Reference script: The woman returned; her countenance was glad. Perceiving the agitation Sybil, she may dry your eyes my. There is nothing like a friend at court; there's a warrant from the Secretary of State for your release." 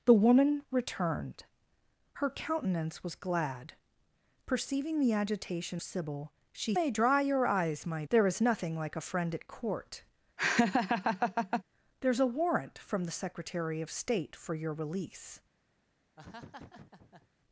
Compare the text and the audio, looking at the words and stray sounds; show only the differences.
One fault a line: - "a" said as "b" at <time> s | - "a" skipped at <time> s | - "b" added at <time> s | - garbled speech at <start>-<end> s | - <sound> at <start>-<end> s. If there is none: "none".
- laugh at 10.4-11.6 s
- laugh at 16.2-17.3 s